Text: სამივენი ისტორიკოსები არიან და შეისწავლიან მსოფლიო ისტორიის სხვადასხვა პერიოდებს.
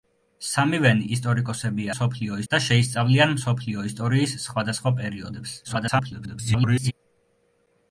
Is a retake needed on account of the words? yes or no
yes